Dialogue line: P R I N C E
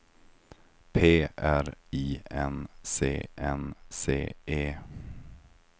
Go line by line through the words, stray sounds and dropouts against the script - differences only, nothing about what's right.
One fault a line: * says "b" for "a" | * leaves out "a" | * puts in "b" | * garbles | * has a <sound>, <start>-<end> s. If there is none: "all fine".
* puts in "N C"